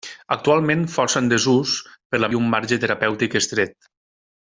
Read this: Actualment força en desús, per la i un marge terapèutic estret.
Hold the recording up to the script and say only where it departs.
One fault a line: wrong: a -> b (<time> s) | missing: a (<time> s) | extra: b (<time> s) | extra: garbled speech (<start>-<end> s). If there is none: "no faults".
no faults